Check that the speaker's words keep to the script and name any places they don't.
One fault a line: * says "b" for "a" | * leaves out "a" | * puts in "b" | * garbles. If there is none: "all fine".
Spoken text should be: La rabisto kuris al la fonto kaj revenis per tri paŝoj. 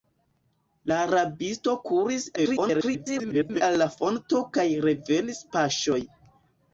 * garbles
* leaves out "per tri"